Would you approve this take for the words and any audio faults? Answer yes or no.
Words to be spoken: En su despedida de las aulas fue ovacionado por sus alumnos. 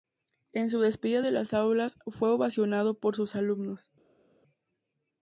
yes